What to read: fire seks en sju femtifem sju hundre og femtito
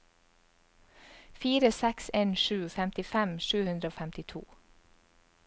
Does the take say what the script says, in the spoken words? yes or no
yes